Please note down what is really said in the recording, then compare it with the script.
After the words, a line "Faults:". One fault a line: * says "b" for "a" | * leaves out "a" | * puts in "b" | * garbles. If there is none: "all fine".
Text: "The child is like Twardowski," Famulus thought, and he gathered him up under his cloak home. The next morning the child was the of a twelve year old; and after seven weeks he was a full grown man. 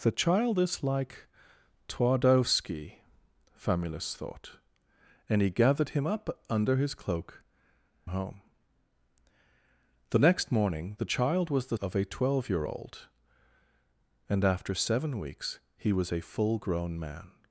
"The child is like Twardowski," Famulus thought, and he gathered him up under his cloak home. The next morning the child was the of a twelve year old; and after seven weeks he was a full grown man.
Faults:
all fine